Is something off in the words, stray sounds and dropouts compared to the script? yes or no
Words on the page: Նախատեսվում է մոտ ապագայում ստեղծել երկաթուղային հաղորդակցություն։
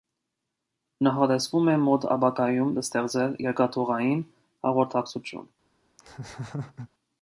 yes